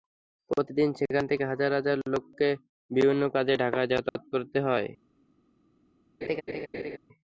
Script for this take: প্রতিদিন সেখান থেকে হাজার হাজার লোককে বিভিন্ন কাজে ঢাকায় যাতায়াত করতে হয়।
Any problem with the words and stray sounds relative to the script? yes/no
yes